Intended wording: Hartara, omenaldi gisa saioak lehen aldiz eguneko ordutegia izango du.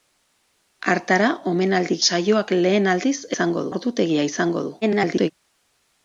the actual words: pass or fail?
fail